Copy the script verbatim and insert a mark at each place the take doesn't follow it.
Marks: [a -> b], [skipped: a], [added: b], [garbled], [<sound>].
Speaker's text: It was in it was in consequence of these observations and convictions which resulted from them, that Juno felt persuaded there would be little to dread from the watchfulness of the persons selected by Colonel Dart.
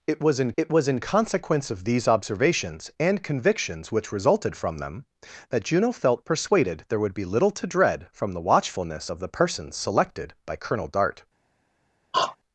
It was in it was in consequence of these observations and convictions which resulted from them, that Juno felt persuaded there would be little to dread from the watchfulness of the persons selected by Colonel Dart. [throat clearing]